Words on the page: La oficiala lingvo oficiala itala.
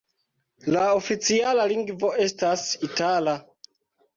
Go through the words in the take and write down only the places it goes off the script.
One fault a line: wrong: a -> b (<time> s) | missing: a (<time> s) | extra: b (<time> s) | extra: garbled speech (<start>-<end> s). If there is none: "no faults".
wrong: oficiala -> estas (2.2 s)